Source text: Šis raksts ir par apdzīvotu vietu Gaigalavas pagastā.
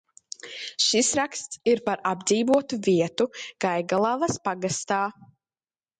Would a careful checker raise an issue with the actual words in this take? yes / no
no